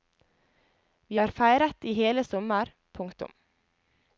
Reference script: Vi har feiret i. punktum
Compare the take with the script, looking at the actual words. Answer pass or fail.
fail